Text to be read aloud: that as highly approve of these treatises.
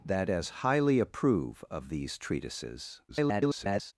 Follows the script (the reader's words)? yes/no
no